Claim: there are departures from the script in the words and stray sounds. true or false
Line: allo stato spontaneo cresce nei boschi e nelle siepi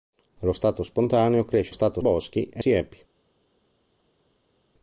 true